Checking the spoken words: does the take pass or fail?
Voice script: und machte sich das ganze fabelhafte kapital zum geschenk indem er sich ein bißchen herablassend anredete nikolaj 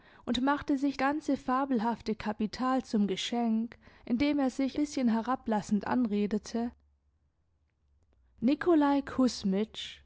fail